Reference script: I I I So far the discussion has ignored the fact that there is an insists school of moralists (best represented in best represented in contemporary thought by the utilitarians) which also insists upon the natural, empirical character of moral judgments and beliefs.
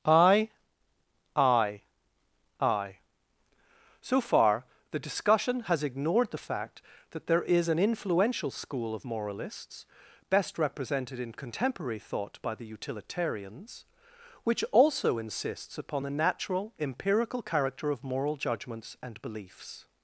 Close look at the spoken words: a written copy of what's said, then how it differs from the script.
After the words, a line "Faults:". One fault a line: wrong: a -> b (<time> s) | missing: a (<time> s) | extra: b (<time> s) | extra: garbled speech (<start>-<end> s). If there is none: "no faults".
I I I So far the discussion has ignored the fact that there is an influential school of moralists (best represented in contemporary thought by the utilitarians) which also insists upon the natural, empirical character of moral judgments and beliefs.
Faults:
wrong: insists -> influential (7.8 s)
missing: best represented in (11.3 s)